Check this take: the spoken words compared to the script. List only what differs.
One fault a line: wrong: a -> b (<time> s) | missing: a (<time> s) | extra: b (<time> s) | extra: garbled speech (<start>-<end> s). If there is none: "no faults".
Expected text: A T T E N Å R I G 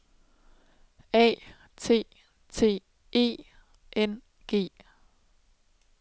missing: Å R I (4.2 s)